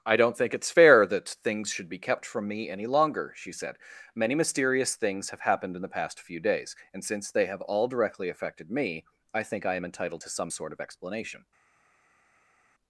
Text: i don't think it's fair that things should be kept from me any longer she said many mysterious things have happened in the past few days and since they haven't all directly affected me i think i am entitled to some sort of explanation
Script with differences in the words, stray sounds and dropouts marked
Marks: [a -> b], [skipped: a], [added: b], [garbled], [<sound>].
i don't think it's fair that things should be kept from me any longer she said many mysterious things have happened in the past few days and since they [haven't -> have] all directly affected me i think i am entitled to some sort of explanation